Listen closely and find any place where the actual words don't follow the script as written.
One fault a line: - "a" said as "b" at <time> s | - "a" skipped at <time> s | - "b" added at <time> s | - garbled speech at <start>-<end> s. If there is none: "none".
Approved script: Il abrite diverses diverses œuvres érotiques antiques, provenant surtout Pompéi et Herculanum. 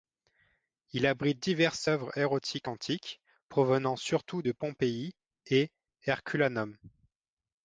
- "diverses" skipped at 1.9 s
- "de" added at 4.4 s